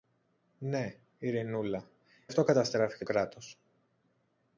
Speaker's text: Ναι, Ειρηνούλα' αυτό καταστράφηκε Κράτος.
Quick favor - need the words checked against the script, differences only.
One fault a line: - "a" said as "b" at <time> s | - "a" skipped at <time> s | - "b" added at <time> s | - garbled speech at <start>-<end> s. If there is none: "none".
none